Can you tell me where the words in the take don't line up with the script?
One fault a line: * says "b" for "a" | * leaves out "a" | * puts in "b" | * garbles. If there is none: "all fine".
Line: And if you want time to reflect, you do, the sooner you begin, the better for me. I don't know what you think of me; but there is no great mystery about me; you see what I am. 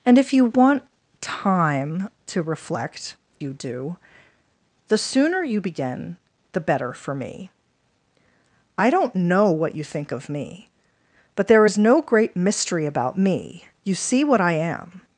all fine